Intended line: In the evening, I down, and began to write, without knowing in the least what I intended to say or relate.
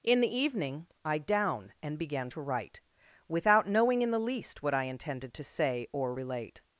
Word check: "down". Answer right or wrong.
right